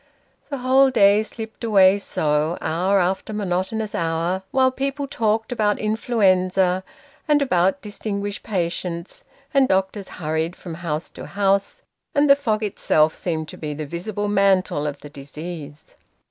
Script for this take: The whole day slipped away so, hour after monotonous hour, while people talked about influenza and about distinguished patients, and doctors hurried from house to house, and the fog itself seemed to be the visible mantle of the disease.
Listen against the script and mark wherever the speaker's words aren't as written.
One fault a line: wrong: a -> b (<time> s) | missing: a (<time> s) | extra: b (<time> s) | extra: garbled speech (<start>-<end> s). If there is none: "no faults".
no faults